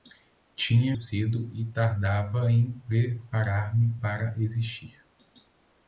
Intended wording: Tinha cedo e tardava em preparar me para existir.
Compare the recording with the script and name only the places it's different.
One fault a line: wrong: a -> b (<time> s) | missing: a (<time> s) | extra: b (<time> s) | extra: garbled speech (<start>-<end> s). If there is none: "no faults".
no faults